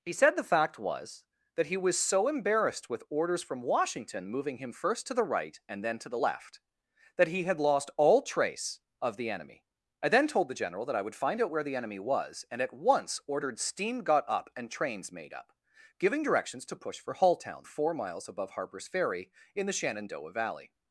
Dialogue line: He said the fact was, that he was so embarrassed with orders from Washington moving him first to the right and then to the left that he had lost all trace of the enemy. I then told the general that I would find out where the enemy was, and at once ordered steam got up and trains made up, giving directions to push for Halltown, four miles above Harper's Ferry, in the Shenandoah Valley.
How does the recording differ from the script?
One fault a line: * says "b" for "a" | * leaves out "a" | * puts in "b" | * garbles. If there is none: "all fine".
all fine